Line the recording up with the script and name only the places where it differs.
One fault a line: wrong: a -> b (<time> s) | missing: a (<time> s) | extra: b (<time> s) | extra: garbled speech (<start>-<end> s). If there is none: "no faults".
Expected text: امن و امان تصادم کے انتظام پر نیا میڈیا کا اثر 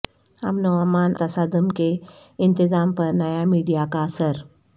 no faults